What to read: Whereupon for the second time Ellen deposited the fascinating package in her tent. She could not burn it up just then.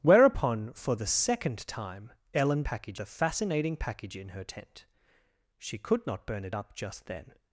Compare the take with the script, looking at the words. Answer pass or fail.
fail